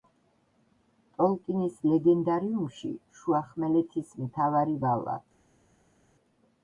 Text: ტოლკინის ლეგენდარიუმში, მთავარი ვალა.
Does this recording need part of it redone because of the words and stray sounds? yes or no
yes